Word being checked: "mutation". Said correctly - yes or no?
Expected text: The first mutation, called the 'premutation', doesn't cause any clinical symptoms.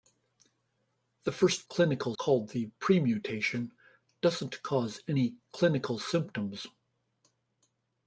no